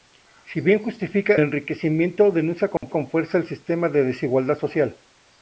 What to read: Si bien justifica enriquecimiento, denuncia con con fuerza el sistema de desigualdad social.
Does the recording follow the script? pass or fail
pass